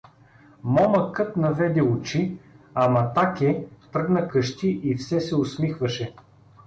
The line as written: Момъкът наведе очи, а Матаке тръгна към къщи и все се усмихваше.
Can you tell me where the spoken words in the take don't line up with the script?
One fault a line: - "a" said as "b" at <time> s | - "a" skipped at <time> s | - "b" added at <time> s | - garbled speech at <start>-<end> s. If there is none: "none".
- "към" skipped at 4.3 s